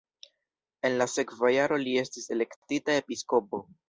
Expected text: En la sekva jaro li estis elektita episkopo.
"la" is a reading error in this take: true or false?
false